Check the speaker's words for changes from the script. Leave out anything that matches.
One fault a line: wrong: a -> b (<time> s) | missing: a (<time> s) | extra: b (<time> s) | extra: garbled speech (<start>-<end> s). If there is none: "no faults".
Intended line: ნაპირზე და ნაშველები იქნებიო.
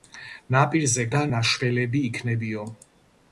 no faults